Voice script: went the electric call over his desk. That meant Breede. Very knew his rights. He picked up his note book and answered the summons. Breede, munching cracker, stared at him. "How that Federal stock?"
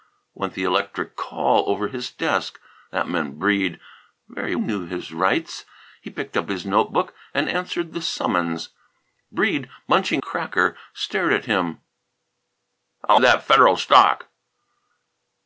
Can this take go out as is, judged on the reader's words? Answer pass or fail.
pass